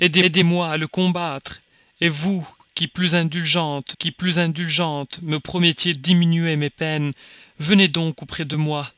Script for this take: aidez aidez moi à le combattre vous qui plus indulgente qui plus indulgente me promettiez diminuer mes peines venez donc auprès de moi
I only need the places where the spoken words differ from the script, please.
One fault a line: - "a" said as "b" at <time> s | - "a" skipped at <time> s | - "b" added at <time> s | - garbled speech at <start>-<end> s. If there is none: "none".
none